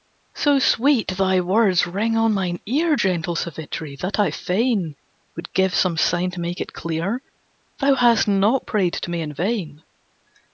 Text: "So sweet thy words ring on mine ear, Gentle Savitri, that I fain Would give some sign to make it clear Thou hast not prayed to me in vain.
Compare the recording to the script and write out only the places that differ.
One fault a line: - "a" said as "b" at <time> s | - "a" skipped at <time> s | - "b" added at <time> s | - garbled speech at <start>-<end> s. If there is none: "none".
none